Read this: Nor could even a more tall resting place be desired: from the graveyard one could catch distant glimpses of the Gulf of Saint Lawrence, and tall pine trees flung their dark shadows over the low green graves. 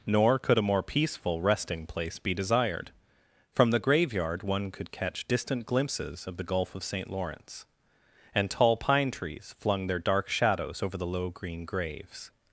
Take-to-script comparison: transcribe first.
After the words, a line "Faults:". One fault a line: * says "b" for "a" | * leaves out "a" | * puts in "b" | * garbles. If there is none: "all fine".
Nor could a more peaceful resting place be desired: from the graveyard one could catch distant glimpses of the Gulf of Saint Lawrence, and tall pine trees flung their dark shadows over the low green graves.
Faults:
* leaves out "even"
* says "peaceful" for "tall"